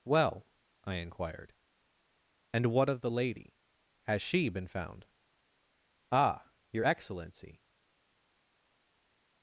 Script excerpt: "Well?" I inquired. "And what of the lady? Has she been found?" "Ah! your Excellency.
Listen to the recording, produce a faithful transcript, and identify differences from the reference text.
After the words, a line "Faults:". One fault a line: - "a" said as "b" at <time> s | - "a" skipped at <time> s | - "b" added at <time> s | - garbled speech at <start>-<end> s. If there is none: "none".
"Well?" I inquired. "And what of the lady? Has she been found?" "Ah! your Excellency.
Faults:
none